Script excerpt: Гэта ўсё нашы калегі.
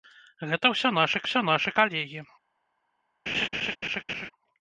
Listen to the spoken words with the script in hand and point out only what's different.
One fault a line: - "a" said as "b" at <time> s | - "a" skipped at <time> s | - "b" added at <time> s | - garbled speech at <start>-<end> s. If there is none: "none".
- "ўсё нашы" added at 1.2 s